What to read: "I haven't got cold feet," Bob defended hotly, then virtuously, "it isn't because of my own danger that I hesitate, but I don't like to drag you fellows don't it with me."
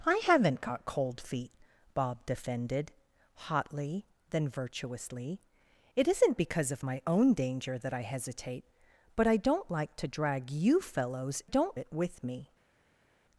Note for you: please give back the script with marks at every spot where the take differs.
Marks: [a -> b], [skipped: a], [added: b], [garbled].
"I haven't got cold feet," Bob defended hotly, then virtuously, "it isn't because of my own danger that I hesitate, but I don't like to drag you fellows don't it with me."